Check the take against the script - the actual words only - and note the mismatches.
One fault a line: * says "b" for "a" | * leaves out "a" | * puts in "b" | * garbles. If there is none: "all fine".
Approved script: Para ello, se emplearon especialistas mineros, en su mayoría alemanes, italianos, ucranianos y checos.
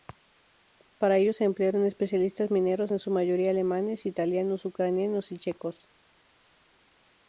all fine